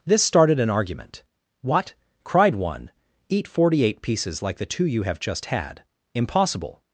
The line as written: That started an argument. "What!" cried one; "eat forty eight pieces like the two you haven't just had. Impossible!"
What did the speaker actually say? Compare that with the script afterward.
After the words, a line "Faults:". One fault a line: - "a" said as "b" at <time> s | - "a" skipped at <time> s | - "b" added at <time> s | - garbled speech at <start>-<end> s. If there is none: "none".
This started an argument. "What!" cried one; "eat forty eight pieces like the two you have just had. Impossible!"
Faults:
- "That" said as "This" at 0.0 s
- "haven't" said as "have" at 5.0 s